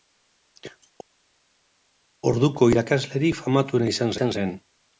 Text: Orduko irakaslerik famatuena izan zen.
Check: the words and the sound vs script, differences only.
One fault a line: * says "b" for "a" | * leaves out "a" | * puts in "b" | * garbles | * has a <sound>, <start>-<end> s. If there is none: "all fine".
* puts in "izan"